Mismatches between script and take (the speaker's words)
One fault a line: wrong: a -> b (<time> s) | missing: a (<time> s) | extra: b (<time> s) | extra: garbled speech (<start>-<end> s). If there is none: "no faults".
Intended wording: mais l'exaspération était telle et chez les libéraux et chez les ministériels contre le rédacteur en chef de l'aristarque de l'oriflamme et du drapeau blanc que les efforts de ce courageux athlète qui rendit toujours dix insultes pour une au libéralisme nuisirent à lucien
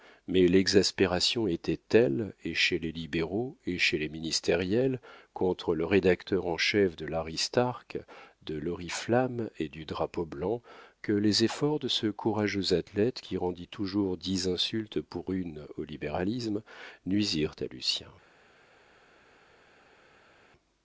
no faults